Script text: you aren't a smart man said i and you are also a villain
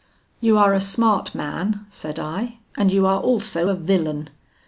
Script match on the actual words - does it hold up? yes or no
no